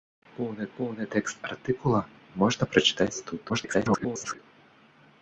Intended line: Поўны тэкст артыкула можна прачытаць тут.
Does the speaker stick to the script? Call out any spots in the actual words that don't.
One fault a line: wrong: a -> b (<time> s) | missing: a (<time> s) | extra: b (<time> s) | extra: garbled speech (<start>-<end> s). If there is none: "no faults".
extra: поўны (0.8 s)
extra: garbled speech (3.5-4.4 s)